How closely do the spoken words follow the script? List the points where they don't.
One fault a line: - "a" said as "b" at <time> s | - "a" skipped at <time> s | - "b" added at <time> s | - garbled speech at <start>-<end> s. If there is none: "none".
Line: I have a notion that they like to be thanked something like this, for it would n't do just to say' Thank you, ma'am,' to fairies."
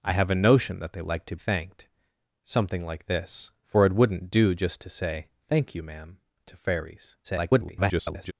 - "be" skipped at 1.4 s
- garbled speech at 7.2-8.3 s